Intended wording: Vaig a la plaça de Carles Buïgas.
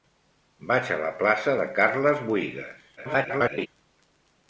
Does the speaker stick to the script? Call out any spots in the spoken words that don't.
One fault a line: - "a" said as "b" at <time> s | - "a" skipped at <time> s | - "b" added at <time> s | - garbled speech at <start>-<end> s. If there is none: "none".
- garbled speech at 3.0-3.7 s